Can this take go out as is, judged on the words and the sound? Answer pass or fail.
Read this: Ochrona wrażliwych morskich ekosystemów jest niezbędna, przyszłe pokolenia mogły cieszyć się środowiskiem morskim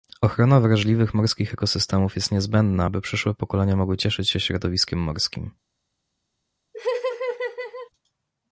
fail